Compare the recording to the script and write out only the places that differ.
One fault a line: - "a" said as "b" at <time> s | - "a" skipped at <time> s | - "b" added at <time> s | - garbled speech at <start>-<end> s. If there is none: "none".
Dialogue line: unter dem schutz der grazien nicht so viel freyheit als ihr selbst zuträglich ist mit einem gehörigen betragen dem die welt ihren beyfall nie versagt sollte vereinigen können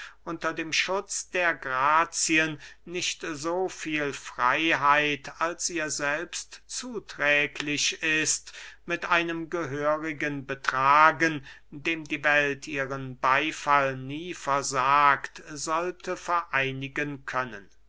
none